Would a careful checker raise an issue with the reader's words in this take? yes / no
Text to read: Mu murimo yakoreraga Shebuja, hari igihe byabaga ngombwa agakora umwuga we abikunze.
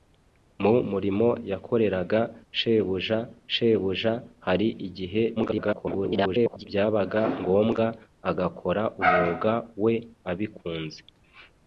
yes